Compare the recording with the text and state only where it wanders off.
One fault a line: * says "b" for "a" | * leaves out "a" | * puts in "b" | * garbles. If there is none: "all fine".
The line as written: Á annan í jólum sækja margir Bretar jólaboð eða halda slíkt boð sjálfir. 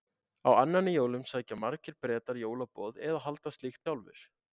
* leaves out "boð"